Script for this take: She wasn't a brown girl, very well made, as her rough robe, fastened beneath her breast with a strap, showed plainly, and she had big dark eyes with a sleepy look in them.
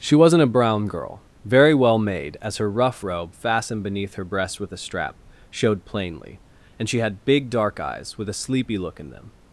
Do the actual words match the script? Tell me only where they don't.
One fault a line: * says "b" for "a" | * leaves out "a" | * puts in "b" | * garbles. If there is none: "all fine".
all fine